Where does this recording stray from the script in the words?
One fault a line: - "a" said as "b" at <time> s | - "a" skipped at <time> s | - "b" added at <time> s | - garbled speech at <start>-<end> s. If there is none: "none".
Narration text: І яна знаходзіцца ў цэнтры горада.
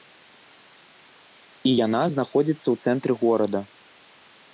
none